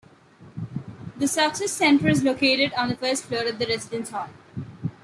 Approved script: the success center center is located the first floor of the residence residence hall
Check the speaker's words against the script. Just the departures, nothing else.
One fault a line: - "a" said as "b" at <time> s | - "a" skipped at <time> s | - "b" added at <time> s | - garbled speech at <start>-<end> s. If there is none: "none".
- "center" skipped at 2.1 s
- "on" added at 2.7 s
- "residence" skipped at 4.1 s